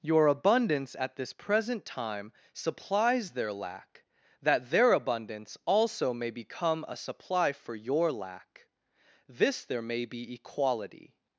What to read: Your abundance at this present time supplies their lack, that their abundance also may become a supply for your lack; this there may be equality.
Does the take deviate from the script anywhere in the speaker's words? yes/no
no